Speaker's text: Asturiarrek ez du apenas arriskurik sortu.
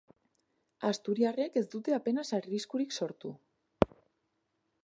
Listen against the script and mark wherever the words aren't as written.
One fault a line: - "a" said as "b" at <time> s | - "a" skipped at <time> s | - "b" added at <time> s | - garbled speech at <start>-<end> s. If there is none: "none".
- "du" said as "dute" at 1.8 s